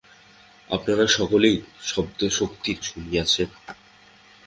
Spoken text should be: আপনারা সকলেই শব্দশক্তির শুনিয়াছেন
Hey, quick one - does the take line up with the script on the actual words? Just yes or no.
yes